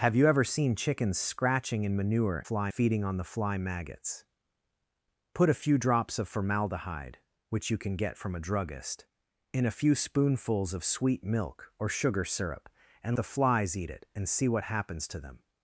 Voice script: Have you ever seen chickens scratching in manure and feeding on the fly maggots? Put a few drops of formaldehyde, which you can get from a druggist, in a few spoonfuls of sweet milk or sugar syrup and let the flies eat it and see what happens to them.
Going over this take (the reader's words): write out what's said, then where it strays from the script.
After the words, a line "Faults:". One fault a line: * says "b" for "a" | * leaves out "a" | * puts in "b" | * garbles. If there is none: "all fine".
Have you ever seen chickens scratching in manure fly feeding on the fly maggots? Put a few drops of formaldehyde, which you can get from a druggist, in a few spoonfuls of sweet milk or sugar syrup and the flies eat it and see what happens to them.
Faults:
* says "fly" for "and"
* leaves out "let"